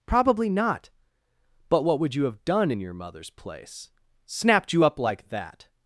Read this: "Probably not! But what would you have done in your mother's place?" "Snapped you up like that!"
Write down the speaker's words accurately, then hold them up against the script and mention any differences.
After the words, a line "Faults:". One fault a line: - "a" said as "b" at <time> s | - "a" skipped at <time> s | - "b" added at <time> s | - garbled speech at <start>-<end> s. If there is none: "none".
"Probably not! But what would you have done in your mother's place?" "Snapped you up like that!"
Faults:
none